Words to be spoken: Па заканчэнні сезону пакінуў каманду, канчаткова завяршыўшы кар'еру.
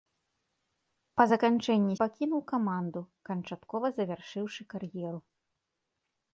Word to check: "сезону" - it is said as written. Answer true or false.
false